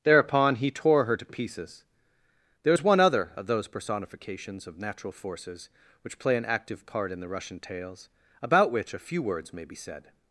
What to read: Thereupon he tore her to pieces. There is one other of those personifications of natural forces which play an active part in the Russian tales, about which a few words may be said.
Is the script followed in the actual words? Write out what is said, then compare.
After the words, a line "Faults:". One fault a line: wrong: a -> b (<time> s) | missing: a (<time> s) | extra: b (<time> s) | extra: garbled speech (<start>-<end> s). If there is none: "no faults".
Thereupon he tore her to pieces. There is one other of those personifications of natural forces which play an active part in the Russian tales, about which a few words may be said.
Faults:
no faults